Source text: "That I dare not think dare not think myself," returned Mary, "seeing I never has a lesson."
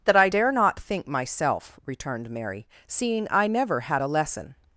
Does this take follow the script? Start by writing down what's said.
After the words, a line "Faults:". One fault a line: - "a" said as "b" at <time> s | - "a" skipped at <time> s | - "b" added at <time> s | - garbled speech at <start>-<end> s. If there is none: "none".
"That I dare not think myself," returned Mary, "seeing I never had a lesson."
Faults:
- "dare not think" skipped at 1.1 s
- "has" said as "had" at 3.8 s